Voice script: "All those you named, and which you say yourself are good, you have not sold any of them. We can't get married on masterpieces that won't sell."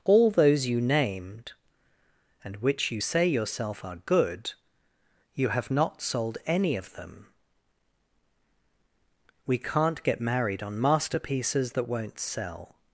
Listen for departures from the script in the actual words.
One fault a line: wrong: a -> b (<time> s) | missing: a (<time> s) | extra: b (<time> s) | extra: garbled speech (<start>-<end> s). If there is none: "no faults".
no faults